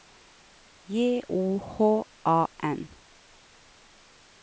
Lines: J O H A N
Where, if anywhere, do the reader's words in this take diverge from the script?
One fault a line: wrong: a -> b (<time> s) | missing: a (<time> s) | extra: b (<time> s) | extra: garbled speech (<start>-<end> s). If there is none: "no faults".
no faults